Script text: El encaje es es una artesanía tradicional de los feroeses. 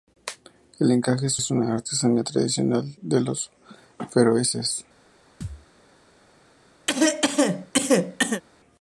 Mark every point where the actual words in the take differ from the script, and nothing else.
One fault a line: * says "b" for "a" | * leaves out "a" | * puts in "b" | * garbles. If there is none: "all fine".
all fine